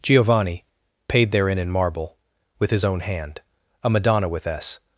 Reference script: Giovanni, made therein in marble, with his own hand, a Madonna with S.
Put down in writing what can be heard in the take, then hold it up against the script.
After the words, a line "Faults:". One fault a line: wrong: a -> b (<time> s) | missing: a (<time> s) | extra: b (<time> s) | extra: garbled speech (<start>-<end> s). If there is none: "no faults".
Giovanni, paid therein in marble, with his own hand, a Madonna with S.
Faults:
wrong: made -> paid (1.1 s)